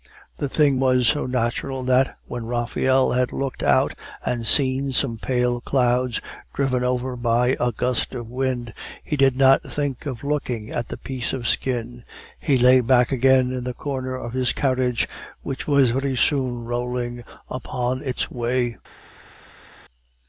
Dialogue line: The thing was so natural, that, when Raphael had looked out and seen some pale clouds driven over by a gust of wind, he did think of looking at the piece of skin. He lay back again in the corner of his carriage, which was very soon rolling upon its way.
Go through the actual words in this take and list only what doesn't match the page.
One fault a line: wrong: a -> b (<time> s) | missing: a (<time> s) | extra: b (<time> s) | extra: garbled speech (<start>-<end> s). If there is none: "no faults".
extra: not (9.4 s)